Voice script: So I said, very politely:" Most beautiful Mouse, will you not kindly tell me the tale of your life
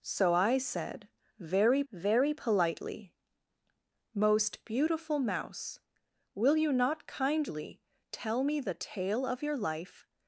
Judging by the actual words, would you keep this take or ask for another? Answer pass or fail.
fail